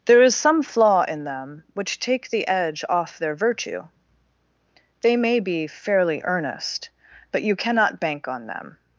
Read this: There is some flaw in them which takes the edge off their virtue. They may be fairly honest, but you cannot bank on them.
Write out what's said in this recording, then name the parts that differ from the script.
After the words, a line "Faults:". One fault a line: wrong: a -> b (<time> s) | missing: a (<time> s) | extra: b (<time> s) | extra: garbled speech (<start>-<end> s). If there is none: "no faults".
There is some flaw in them which take the edge off their virtue. They may be fairly earnest, but you cannot bank on them.
Faults:
wrong: takes -> take (2.0 s)
wrong: honest -> earnest (6.2 s)